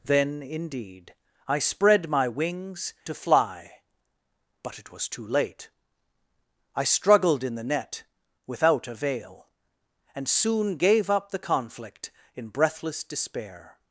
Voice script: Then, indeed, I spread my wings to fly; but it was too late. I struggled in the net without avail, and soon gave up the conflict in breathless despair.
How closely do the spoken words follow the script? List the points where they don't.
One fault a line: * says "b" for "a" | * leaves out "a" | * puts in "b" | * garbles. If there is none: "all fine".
all fine